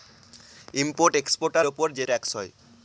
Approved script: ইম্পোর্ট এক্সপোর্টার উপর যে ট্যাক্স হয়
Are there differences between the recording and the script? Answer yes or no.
no